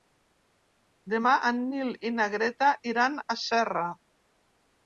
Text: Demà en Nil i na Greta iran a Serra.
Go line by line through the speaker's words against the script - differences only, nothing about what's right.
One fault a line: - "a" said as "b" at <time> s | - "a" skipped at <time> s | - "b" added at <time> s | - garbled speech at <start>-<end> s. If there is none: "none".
none